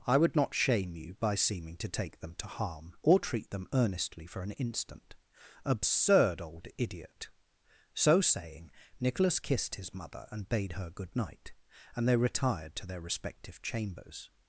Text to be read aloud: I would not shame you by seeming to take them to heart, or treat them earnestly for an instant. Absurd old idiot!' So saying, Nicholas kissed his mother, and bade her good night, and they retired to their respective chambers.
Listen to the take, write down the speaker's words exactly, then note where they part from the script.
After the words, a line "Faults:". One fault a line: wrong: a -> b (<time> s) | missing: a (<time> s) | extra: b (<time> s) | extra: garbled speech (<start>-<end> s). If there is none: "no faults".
I would not shame you by seeming to take them to harm, or treat them earnestly for an instant. Absurd old idiot!' So saying, Nicholas kissed his mother, and bade her good night, and they retired to their respective chambers.
Faults:
wrong: heart -> harm (2.5 s)